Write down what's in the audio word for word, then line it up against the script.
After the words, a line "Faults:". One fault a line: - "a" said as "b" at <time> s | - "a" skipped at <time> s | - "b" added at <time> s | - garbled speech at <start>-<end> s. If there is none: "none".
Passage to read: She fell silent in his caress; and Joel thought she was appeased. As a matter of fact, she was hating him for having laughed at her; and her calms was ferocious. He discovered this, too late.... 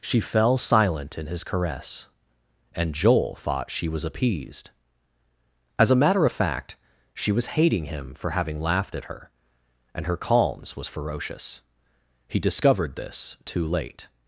She fell silent in his caress; and Joel thought she was appeased. As a matter of fact, she was hating him for having laughed at her; and her calms was ferocious. He discovered this, too late....
Faults:
none